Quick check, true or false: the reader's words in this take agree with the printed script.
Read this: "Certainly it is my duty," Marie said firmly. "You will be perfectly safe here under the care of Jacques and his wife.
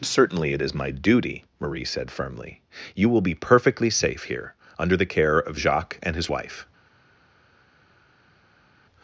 true